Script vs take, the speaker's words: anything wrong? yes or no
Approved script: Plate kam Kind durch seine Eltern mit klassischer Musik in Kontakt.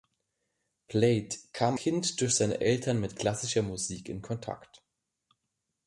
no